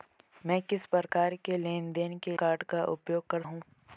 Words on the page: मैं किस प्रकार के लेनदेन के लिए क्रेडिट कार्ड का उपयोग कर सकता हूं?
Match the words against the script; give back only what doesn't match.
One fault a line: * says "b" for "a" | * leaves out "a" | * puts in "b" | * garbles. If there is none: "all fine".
* leaves out "लिए क्रेडिट"
* leaves out "सकता"